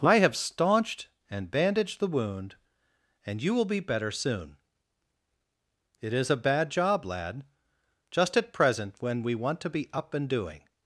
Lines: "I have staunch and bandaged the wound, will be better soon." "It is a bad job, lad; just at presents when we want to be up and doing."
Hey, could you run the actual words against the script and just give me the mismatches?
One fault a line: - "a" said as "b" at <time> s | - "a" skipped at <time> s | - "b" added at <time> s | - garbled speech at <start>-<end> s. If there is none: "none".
- "staunch" said as "staunched" at 0.3 s
- "and you" added at 3.2 s
- "presents" said as "present" at 8.5 s